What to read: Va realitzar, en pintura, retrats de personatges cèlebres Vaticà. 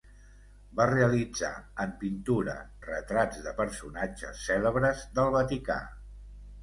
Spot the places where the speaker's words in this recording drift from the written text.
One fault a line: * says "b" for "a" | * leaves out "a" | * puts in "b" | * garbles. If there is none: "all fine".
* puts in "del"